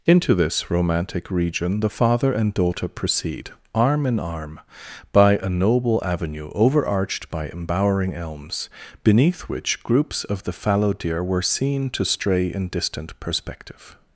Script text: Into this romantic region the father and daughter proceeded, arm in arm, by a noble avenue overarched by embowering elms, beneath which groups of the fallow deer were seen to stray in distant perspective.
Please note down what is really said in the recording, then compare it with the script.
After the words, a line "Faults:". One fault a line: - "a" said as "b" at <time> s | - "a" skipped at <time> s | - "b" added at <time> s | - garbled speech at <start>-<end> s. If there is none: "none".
Into this romantic region the father and daughter proceed, arm in arm, by a noble avenue overarched by embowering elms, beneath which groups of the fallow deer were seen to stray in distant perspective.
Faults:
- "proceeded" said as "proceed" at 2.9 s